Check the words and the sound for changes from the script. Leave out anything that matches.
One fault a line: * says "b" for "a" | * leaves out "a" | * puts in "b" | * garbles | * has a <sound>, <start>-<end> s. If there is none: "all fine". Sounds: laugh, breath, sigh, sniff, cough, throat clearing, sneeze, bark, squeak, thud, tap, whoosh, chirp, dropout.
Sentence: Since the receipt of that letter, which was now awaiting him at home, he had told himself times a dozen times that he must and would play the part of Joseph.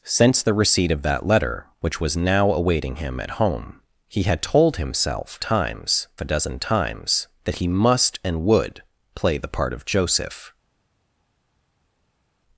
all fine